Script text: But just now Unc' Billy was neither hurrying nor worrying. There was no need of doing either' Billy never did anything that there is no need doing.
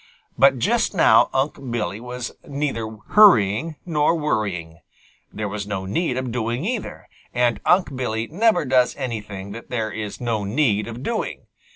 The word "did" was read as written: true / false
false